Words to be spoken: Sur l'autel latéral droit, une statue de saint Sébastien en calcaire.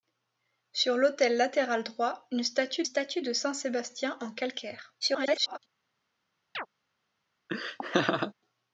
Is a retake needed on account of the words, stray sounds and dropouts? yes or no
yes